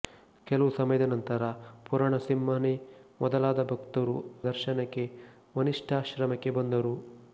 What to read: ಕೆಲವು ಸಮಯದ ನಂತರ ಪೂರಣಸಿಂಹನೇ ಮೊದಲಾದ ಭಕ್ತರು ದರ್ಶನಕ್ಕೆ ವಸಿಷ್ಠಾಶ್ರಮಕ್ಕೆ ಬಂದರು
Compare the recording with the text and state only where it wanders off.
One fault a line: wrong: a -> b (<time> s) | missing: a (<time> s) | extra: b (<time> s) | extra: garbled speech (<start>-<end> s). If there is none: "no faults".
no faults